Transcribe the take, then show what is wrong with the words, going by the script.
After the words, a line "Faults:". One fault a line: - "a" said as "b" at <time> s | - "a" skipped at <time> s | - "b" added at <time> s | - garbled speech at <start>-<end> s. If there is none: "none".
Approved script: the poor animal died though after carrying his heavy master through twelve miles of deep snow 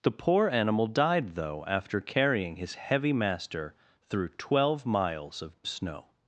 the poor animal died though after carrying his heavy master through twelve miles of snow
Faults:
- "deep" skipped at 5.6 s